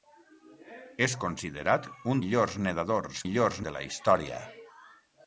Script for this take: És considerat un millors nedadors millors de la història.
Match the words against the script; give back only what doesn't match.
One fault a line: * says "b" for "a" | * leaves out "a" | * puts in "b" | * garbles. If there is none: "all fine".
all fine